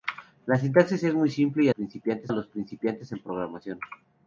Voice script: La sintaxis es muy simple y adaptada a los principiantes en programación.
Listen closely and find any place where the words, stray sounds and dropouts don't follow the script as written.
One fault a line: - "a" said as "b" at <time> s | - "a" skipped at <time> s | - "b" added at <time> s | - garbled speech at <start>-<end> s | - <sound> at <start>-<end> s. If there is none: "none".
- "adaptada" said as "principiantes" at 1.7 s